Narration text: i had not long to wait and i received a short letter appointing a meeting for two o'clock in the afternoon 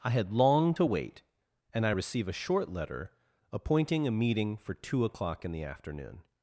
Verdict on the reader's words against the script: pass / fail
fail